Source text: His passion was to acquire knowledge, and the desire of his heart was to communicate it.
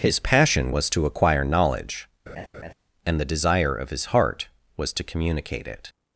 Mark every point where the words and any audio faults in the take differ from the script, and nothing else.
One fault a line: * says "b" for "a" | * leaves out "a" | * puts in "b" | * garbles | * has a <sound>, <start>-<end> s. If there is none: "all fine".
* has a laugh, 2.3-2.7 s